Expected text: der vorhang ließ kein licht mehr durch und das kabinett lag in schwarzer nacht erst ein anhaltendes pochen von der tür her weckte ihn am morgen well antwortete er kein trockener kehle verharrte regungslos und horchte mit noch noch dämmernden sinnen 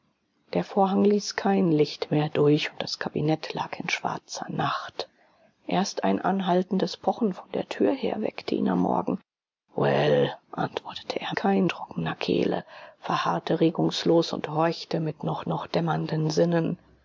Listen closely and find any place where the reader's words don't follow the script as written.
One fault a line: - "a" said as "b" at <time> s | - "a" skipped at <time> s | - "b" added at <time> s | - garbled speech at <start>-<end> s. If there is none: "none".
none